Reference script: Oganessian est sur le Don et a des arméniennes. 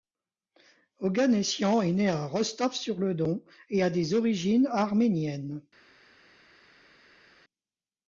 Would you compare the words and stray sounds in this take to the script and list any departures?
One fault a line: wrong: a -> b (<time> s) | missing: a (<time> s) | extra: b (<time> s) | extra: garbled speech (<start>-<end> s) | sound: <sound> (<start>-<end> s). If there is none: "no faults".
extra: né à Rostov (1.9 s)
extra: origines (4.1 s)